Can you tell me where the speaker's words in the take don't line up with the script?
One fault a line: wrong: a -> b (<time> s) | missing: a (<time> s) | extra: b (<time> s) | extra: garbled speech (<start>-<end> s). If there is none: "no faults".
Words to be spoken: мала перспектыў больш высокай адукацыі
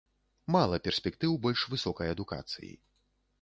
no faults